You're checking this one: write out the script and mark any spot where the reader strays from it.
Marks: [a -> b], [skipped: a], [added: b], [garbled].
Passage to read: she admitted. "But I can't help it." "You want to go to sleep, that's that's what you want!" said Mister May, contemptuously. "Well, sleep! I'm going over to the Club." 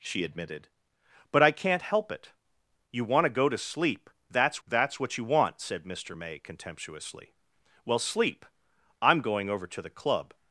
she admitted. "But I can't help it." "You want to go to sleep, that's that's what you want!" said Mister May, contemptuously. "Well, sleep! I'm going over to the Club."